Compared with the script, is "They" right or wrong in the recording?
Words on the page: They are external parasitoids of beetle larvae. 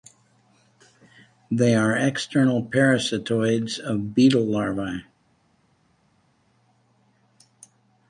right